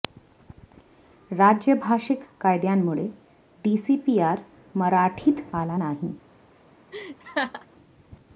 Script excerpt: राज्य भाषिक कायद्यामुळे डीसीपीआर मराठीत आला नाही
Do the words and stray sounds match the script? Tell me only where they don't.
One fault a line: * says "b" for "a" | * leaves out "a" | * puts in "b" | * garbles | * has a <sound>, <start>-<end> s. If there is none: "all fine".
* has a laugh, 6.9-7.7 s